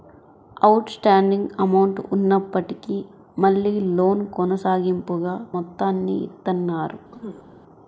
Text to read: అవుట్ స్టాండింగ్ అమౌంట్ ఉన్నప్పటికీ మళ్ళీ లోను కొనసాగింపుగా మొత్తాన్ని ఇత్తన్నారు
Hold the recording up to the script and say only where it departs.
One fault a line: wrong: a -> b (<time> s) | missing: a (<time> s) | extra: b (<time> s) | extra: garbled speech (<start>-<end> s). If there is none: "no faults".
no faults